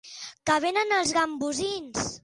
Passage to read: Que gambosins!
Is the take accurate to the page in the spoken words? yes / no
no